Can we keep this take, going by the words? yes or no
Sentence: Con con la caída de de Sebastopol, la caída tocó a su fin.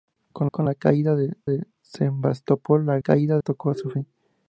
yes